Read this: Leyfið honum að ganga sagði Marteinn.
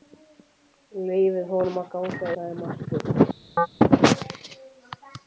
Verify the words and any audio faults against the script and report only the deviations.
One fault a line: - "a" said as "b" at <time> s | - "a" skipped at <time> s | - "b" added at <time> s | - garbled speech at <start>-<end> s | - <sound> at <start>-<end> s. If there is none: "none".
- chirp at 3.6-3.7 s